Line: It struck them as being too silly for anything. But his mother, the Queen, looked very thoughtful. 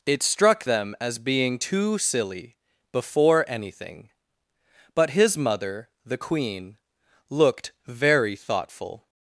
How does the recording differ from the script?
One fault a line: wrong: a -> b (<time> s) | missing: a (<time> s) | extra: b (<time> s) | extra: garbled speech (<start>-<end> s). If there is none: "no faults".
wrong: for -> before (2.9 s)